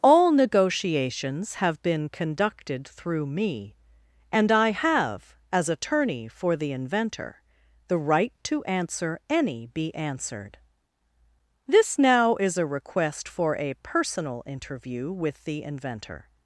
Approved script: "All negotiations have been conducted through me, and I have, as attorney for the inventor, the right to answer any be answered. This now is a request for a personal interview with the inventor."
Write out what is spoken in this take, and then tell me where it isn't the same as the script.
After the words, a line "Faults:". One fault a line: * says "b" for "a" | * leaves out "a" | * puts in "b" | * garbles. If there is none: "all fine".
"All negotiations have been conducted through me, and I have, as attorney for the inventor, the right to answer any be answered. This now is a request for a personal interview with the inventor."
Faults:
all fine